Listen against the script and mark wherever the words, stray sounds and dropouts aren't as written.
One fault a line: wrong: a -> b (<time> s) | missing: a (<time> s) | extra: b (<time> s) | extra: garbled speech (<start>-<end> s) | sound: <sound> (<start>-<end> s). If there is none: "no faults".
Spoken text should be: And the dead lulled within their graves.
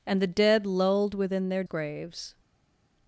no faults